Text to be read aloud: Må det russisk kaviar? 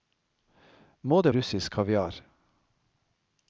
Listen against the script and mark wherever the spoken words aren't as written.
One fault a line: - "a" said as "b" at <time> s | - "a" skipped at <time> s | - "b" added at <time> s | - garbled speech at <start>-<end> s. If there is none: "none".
none